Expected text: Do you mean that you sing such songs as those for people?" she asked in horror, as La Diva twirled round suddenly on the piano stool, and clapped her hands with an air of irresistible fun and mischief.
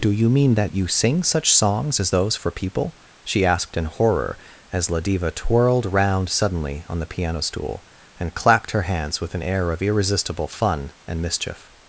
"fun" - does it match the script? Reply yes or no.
yes